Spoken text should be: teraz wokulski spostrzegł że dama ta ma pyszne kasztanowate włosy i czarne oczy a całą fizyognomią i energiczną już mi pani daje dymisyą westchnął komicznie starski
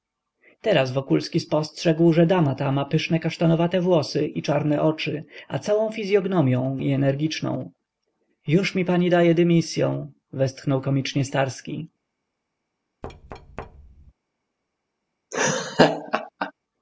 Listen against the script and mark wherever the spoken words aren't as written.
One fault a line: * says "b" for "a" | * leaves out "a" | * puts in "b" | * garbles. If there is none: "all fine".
all fine